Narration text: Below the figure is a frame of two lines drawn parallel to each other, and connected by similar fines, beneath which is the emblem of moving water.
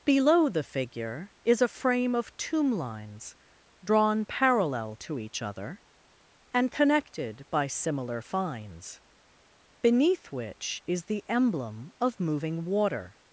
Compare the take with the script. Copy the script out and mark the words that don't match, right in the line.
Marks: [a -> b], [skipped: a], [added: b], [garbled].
Below the figure is a frame of [two -> tomb] lines drawn parallel to each other, and connected by similar fines, beneath which is the emblem of moving water.